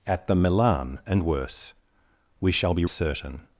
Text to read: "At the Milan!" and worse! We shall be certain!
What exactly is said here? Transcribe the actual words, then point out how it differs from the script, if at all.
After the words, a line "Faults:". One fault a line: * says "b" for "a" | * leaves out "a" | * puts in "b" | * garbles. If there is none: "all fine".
"At the Milan!" and worse! We shall be certain!
Faults:
all fine